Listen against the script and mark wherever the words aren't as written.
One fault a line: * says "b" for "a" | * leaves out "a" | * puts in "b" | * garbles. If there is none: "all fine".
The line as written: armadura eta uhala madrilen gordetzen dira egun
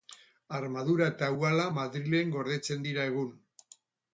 all fine